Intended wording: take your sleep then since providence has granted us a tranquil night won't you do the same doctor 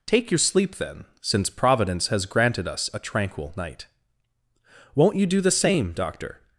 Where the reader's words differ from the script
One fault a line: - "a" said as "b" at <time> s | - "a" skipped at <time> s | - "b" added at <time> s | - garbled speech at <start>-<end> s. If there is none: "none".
none